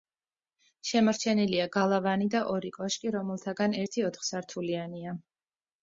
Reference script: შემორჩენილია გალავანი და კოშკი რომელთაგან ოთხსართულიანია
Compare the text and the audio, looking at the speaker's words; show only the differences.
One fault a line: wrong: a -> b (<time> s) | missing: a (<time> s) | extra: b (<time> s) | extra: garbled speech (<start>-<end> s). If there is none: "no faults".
extra: ორი (2.5 s)
extra: ერთი (3.8 s)